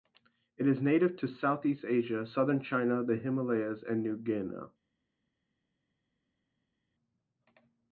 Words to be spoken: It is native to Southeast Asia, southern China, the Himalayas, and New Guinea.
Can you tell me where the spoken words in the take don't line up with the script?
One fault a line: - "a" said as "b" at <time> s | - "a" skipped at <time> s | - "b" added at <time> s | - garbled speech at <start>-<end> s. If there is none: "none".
none